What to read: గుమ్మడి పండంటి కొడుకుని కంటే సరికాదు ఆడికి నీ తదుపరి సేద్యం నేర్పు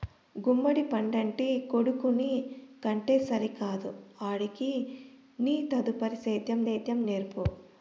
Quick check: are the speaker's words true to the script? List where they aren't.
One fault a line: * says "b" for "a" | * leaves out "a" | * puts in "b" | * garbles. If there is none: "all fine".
* puts in "సేద్యం"